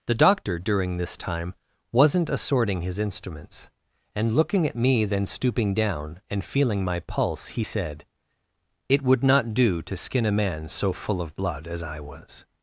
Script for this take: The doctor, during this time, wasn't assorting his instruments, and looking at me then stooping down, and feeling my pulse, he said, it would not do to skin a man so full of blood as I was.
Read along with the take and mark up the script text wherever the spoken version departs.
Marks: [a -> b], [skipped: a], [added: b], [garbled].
The doctor, during this time, wasn't assorting his instruments, and looking at me then stooping down, and feeling my pulse, he said, it would not do to skin a man so full of blood as I was.